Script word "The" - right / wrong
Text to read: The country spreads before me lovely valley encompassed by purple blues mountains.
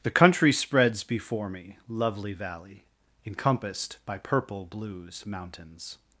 right